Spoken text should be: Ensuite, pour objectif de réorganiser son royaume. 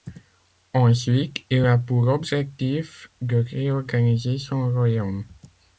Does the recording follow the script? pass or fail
fail